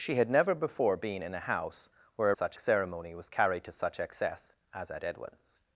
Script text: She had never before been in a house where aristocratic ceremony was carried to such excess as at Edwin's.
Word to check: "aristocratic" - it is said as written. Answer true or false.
false